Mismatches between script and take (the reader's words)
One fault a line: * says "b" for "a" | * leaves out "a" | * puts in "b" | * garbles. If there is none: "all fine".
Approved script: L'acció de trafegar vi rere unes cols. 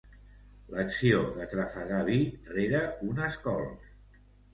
all fine